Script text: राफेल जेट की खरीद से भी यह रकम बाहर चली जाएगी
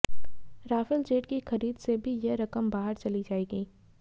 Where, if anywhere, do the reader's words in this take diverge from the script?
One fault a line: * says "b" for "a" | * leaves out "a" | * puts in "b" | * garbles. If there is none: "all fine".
all fine